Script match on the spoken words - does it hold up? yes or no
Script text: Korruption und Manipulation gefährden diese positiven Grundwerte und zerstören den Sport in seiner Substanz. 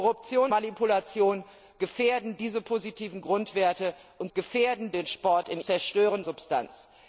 no